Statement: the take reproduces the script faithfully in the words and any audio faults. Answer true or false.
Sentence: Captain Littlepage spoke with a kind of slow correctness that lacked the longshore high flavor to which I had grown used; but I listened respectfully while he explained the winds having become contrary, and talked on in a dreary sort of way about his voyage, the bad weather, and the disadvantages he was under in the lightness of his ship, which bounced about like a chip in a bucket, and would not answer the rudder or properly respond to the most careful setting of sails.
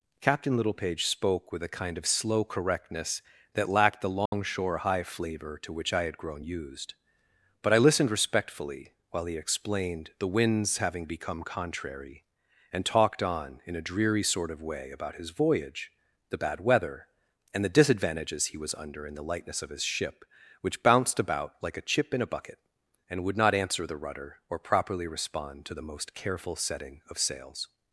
false